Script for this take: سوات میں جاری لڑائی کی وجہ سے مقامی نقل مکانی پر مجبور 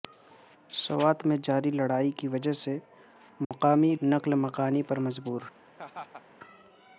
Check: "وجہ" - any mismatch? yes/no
no